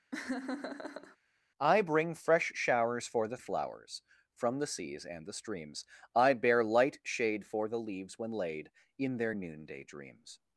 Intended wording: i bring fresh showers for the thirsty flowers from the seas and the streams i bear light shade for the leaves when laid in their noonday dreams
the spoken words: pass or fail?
fail